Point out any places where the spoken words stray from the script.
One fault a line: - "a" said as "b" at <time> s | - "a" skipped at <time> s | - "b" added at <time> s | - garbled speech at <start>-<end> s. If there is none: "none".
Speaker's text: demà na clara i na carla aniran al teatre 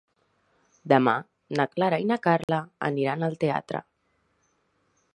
none